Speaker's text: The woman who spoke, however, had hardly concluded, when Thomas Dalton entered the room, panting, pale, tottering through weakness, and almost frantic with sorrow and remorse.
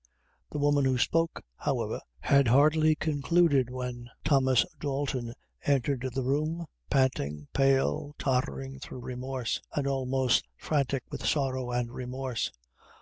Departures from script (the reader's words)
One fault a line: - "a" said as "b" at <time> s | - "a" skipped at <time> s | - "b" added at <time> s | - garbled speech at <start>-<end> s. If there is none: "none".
- "weakness" said as "remorse" at 9.0 s